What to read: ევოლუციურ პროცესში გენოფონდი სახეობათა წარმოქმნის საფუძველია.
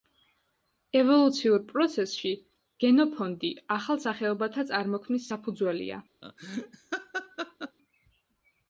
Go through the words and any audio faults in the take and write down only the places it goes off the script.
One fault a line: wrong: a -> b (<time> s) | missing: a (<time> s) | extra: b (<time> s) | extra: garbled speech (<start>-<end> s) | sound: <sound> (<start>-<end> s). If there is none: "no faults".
extra: ახალ (3.8 s)
sound: laugh (6.2-7.8 s)